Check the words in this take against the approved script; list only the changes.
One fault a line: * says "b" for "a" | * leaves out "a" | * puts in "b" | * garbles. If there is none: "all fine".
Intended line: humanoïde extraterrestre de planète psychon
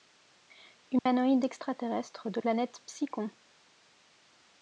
all fine